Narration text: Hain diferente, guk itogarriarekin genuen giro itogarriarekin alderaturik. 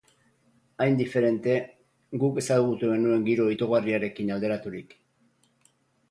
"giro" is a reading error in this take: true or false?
false